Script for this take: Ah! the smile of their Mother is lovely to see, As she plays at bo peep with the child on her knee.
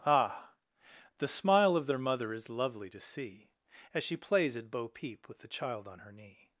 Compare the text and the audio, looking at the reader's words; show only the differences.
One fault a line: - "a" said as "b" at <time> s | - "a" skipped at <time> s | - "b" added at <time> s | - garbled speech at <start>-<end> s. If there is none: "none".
none